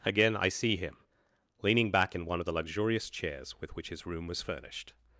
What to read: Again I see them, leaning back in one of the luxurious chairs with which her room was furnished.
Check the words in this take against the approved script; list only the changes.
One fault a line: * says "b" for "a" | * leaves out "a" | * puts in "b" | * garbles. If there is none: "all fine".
* says "him" for "them"
* says "his" for "her"